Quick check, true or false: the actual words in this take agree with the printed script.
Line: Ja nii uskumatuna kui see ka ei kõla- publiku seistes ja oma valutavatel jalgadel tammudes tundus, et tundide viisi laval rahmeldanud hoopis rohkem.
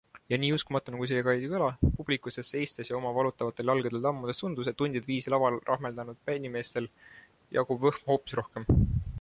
false